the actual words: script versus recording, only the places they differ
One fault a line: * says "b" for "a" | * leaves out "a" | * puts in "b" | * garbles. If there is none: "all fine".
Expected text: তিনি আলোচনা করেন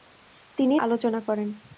all fine